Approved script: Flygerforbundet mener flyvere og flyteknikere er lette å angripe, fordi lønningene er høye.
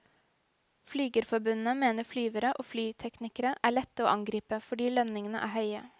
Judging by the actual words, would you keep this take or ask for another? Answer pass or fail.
pass